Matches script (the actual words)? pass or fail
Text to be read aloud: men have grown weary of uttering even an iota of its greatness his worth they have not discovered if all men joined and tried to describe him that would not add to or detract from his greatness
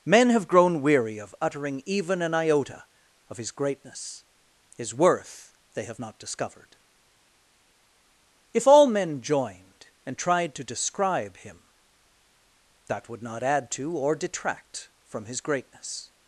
fail